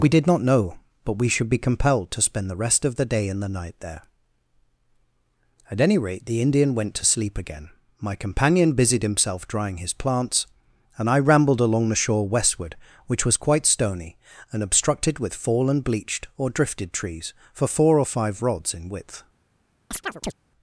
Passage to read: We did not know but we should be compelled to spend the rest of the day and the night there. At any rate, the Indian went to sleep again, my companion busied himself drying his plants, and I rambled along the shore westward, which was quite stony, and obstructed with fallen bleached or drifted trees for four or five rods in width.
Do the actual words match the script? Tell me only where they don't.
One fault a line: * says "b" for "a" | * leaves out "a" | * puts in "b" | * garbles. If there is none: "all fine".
all fine